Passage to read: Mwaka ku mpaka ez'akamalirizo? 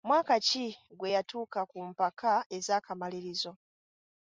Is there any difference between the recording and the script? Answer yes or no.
yes